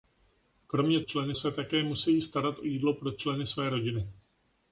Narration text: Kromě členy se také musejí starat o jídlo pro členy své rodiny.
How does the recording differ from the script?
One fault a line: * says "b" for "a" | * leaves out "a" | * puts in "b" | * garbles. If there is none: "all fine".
all fine